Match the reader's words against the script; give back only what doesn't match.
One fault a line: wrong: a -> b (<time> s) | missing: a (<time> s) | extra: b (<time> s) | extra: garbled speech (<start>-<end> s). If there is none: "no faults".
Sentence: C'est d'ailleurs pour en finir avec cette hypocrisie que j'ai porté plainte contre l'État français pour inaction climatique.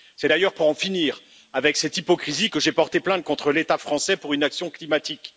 no faults